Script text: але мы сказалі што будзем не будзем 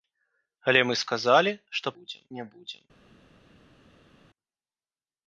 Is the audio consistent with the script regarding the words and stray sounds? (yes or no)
yes